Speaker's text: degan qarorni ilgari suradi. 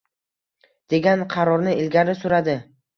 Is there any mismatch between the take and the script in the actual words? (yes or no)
no